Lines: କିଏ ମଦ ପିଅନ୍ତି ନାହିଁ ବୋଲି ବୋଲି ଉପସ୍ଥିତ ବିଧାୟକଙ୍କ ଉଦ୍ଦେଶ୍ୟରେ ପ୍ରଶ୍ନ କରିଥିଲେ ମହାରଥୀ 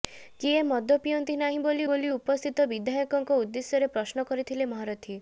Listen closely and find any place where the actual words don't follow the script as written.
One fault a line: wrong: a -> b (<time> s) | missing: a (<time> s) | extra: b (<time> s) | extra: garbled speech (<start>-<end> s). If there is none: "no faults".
no faults